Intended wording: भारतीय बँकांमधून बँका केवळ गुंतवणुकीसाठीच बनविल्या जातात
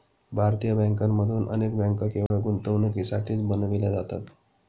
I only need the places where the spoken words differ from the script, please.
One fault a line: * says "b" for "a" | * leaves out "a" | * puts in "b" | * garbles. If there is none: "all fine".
* puts in "अनेक"